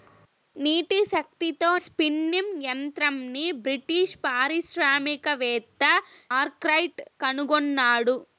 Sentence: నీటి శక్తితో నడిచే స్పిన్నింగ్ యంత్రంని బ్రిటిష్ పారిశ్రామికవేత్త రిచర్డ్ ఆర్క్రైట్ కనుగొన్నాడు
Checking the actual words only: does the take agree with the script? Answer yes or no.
no